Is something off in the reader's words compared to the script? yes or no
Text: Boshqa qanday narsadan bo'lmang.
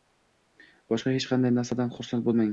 yes